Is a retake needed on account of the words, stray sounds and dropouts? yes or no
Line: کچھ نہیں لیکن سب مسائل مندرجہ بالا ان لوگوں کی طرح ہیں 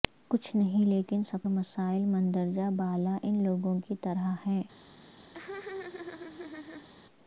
yes